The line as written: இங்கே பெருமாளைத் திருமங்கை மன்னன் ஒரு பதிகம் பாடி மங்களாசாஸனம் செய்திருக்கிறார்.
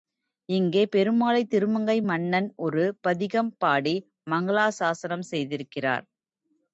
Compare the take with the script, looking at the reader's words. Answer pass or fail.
pass